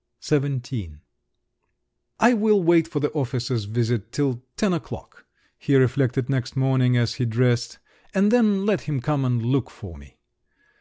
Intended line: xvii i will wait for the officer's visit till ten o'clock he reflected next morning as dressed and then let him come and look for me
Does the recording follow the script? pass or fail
fail